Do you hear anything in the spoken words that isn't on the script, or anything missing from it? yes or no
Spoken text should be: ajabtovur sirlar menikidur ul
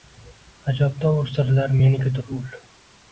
no